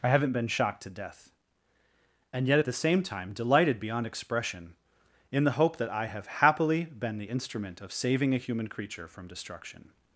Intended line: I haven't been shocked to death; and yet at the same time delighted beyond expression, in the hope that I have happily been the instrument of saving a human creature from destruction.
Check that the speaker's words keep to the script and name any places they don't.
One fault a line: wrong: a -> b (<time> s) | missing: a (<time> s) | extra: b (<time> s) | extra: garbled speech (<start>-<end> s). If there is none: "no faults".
no faults